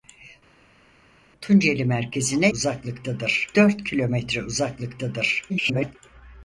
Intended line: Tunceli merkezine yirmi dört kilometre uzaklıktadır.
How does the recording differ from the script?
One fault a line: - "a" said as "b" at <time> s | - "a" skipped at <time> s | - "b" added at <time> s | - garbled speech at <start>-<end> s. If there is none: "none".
- "yirmi" said as "uzaklıktadır" at 2.5 s
- garbled speech at 5.5-6.0 s